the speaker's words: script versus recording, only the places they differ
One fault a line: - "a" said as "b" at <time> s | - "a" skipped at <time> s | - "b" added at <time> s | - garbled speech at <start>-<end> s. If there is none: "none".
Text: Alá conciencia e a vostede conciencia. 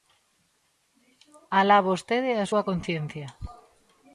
- "conciencia" said as "vostede" at 1.9 s
- "vostede" said as "súa" at 2.5 s